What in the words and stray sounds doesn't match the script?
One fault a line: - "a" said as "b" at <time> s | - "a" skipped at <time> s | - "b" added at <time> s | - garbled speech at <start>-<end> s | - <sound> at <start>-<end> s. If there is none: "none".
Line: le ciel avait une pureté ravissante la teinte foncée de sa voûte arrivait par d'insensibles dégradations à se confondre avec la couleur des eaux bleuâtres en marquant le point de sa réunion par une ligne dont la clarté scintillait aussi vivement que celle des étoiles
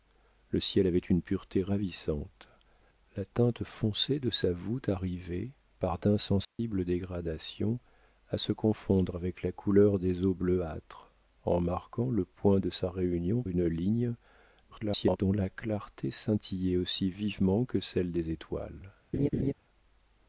- dropout at 6.4-6.6 s
- "par" skipped at 13.4 s
- garbled speech at 14.7-15.2 s
- laugh at 19.1-19.5 s